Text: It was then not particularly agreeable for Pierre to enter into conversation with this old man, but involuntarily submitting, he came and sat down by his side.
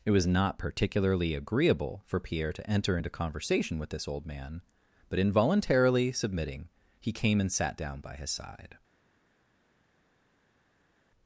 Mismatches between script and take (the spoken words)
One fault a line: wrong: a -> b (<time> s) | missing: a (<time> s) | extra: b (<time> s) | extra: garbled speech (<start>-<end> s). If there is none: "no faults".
missing: then (0.3 s)